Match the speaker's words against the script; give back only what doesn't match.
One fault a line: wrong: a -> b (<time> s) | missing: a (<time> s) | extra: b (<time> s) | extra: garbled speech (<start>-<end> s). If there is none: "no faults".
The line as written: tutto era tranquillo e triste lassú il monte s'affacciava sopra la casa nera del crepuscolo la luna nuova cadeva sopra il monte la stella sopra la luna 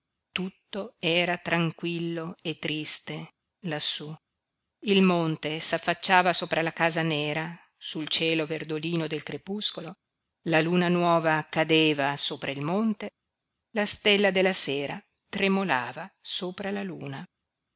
extra: sul cielo verdolino (7.8 s)
extra: della sera tremolava (14.3 s)